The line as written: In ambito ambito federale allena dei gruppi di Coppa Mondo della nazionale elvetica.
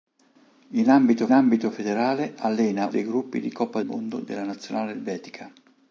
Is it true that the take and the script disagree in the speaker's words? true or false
false